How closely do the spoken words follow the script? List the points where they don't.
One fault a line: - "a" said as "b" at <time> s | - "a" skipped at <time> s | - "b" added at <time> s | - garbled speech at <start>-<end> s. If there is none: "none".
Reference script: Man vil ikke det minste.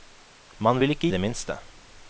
none